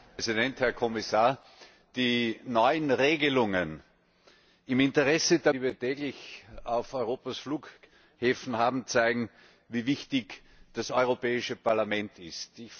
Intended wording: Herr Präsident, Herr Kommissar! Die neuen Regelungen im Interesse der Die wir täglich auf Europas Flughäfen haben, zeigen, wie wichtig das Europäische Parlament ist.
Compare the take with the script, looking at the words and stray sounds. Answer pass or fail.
pass